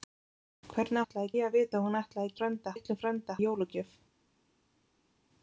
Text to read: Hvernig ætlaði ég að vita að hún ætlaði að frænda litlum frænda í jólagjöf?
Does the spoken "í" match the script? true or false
true